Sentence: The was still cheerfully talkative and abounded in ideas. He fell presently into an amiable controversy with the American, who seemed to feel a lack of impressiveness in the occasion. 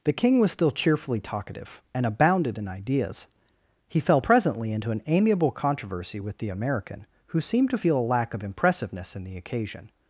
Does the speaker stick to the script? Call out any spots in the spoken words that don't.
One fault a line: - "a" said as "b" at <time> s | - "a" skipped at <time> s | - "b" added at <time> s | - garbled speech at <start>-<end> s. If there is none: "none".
- "king" added at 0.1 s